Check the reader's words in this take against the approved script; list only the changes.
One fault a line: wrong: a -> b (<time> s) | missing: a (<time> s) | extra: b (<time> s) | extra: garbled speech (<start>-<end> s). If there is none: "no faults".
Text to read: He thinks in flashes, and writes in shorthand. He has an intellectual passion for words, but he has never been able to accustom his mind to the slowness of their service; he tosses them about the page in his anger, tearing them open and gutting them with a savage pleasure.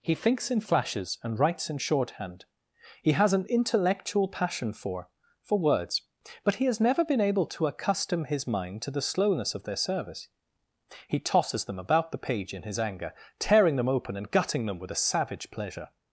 extra: for (5.4 s)